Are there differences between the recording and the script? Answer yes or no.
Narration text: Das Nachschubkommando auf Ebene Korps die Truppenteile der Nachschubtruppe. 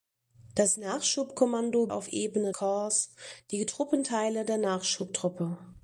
no